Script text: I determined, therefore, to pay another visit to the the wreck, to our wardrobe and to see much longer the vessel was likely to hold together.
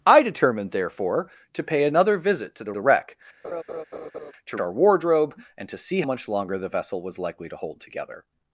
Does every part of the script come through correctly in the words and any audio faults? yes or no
no